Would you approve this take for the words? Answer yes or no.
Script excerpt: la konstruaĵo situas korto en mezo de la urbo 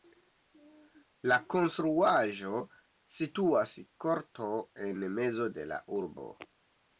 yes